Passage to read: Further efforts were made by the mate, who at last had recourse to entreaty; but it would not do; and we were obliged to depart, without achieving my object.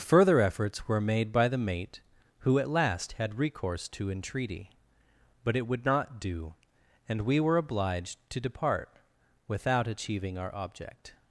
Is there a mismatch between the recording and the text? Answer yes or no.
yes